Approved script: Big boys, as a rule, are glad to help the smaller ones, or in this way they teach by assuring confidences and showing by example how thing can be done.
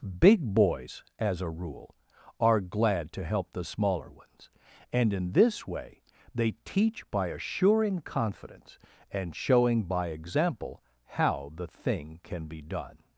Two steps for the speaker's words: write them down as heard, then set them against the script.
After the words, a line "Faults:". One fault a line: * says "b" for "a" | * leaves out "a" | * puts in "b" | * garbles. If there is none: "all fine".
Big boys, as a rule, are glad to help the smaller ones, and in this way they teach by assuring confidence and showing by example how the thing can be done.
Faults:
* says "and" for "or"
* says "confidence" for "confidences"
* puts in "the"